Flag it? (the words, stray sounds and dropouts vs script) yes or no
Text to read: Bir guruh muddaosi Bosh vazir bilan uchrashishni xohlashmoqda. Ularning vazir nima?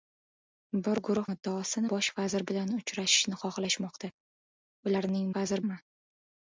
no